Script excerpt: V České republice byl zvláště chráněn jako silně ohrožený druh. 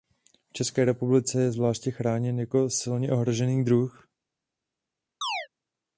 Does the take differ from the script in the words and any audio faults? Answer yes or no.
yes